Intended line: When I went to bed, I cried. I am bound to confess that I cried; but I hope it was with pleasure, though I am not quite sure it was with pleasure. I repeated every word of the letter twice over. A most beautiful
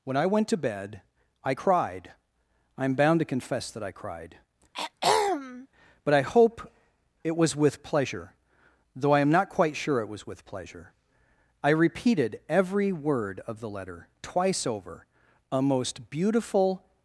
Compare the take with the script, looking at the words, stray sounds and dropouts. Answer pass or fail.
fail